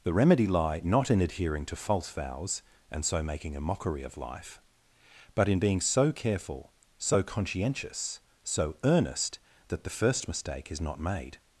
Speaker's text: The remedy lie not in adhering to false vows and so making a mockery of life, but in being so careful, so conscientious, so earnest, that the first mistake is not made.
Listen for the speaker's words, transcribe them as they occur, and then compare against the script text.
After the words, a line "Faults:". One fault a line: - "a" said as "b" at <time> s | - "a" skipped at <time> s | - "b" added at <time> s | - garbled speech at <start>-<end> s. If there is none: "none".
The remedy lie not in adhering to false vows and so making a mockery of life, but in being so careful, so conscientious, so earnest, that the first mistake is not made.
Faults:
none